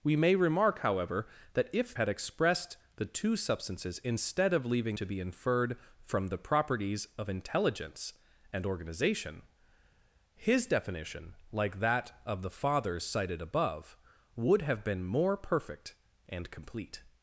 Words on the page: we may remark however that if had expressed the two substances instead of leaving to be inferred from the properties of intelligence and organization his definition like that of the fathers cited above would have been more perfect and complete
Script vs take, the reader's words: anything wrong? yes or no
no